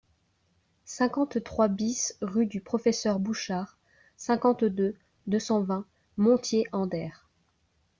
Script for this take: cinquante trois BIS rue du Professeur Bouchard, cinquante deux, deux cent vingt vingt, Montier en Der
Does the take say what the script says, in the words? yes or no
no